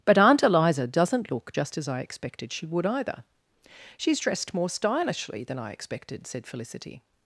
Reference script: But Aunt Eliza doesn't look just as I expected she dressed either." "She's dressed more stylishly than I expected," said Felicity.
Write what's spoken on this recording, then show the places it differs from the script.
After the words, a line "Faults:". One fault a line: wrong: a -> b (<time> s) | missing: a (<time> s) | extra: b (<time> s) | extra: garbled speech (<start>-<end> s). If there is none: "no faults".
But Aunt Eliza doesn't look just as I expected she would either." "She's dressed more stylishly than I expected," said Felicity.
Faults:
wrong: dressed -> would (2.7 s)